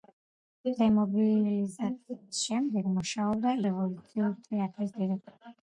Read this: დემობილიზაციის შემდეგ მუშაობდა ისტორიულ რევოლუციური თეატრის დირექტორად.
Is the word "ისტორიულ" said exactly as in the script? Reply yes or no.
no